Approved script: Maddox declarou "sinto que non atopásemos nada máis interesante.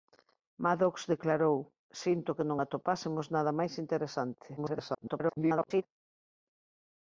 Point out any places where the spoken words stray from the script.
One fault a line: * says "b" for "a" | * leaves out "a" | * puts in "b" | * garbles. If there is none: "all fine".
* garbles